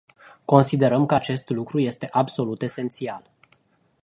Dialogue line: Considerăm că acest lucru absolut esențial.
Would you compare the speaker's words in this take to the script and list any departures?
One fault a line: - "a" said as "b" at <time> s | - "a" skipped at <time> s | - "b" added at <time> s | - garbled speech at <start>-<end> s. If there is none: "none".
- "este" added at 1.8 s